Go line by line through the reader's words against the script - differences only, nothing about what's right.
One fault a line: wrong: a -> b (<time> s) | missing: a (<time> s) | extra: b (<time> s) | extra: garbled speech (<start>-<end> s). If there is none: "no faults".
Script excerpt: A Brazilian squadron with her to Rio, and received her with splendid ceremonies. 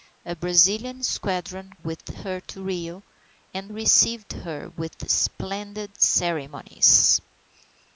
no faults